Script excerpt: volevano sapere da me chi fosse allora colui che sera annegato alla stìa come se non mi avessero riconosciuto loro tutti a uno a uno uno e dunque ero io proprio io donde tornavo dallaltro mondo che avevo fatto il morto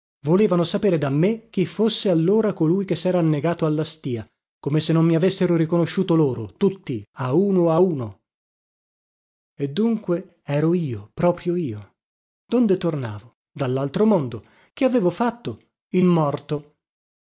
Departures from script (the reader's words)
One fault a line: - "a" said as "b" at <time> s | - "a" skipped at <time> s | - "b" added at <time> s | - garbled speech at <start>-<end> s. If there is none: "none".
- "uno" skipped at 8.2 s